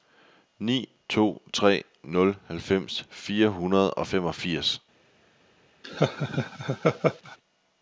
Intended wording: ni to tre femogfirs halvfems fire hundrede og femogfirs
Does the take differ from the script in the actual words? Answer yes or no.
yes